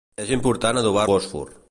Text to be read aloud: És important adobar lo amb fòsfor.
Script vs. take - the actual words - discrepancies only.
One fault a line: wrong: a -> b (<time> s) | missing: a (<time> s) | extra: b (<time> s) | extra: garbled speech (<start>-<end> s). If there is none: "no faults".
missing: lo amb (1.1 s)